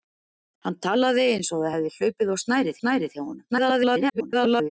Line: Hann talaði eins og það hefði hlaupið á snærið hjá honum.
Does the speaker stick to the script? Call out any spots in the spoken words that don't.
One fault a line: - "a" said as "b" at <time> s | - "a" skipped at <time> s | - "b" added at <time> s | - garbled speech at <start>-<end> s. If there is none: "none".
- "snærið" added at 2.8 s
- garbled speech at 3.5-4.7 s